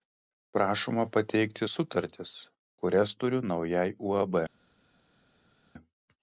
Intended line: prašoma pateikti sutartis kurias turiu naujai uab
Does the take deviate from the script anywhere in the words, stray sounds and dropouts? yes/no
no